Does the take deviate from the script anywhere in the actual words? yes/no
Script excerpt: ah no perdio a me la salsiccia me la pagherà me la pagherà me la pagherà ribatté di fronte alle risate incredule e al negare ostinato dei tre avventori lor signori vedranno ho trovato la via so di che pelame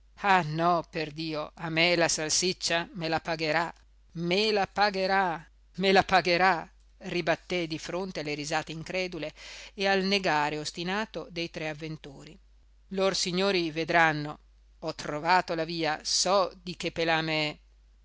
no